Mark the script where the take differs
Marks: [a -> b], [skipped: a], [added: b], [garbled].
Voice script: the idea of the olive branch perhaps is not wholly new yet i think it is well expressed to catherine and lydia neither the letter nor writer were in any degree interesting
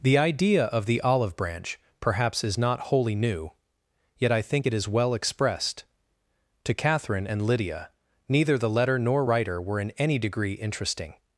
the idea of the olive branch perhaps is not wholly new yet i think it is well expressed to catherine and lydia neither the letter nor writer were in any degree interesting